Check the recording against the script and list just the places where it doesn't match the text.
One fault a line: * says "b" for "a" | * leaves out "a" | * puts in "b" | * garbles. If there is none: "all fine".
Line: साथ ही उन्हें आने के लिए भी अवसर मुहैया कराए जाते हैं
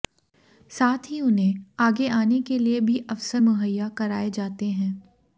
* puts in "आगे"